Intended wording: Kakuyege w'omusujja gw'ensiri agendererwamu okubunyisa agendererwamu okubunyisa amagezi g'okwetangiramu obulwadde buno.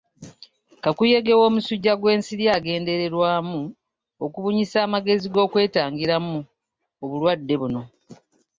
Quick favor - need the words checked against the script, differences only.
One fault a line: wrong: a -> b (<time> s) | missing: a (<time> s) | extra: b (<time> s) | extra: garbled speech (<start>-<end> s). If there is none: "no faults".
missing: agendererwamu okubunyisa (4.8 s)